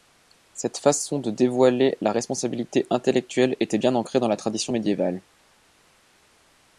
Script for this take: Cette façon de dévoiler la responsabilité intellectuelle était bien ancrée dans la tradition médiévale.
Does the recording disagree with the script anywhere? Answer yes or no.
no